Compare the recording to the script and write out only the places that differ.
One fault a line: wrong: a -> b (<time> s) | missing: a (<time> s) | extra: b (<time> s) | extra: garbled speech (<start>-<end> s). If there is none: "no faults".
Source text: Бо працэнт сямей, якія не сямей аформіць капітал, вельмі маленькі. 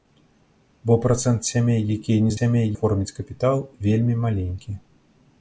no faults